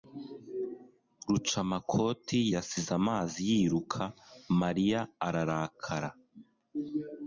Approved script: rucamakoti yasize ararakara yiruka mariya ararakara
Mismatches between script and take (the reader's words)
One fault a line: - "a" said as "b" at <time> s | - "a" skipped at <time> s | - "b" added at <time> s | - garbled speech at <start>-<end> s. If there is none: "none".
- "ararakara" said as "amazi" at 3.0 s